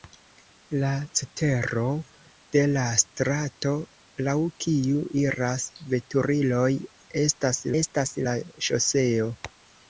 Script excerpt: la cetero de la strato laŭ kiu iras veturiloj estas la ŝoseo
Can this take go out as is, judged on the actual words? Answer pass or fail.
fail